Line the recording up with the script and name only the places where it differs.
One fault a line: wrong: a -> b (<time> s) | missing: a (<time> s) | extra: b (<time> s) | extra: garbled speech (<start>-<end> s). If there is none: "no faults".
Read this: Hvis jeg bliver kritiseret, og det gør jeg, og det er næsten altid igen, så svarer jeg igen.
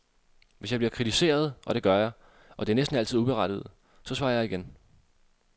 wrong: igen -> uberettiget (3.2 s)